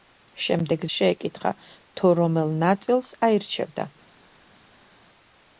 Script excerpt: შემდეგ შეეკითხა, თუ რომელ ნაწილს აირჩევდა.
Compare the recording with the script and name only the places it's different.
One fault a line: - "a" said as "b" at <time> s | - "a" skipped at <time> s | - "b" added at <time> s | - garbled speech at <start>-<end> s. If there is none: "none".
none